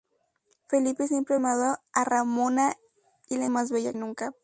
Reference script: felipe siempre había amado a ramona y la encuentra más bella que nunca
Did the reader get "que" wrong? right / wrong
wrong